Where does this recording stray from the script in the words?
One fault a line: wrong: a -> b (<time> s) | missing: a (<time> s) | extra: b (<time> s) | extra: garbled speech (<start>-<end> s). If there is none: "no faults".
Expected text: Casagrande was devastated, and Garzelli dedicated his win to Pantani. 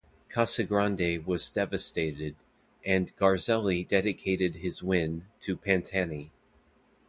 no faults